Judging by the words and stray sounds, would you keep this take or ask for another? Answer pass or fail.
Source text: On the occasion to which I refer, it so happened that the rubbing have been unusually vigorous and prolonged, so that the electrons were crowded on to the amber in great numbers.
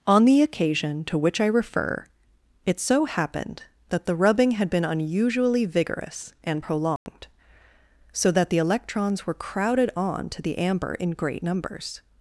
fail